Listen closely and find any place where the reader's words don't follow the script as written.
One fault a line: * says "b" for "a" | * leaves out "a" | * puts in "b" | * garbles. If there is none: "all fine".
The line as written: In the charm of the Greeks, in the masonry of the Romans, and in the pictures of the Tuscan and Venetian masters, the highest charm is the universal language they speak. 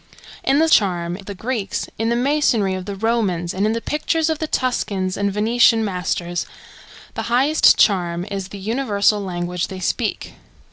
all fine